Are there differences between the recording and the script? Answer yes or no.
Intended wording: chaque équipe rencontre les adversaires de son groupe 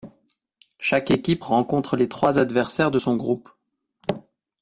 yes